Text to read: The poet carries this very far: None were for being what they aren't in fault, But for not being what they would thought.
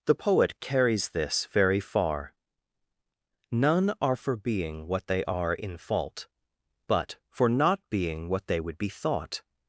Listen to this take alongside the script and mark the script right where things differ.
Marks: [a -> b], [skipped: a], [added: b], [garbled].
The poet carries this very far: None [were -> are] for being what they [aren't -> are] in fault, But for not being what they would [added: be] thought.